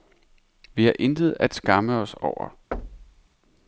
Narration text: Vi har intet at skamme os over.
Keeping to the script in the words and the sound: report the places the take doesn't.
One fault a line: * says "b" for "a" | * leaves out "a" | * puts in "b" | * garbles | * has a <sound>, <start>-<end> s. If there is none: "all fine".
* has a thud, 2.7-3.3 s